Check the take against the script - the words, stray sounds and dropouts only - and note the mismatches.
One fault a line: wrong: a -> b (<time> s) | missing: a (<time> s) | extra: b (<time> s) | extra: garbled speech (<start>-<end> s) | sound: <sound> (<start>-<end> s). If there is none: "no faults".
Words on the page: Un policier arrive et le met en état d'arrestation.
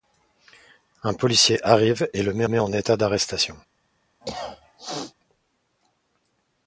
extra: met (2.5 s)
sound: cough (4.2-5.1 s)